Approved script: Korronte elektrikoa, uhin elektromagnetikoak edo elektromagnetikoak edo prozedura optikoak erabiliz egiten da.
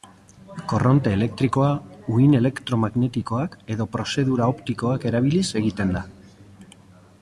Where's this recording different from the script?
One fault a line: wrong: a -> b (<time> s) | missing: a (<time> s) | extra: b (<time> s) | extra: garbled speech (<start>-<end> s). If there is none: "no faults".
missing: elektromagnetikoak edo (3.9 s)